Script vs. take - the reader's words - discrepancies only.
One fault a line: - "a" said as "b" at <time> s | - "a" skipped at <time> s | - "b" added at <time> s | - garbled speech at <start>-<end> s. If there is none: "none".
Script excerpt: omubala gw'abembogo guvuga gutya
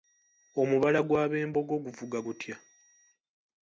none